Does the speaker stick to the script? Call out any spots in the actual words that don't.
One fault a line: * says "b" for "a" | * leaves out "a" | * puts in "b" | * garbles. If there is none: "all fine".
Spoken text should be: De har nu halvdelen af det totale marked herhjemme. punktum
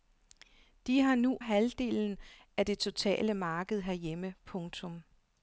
all fine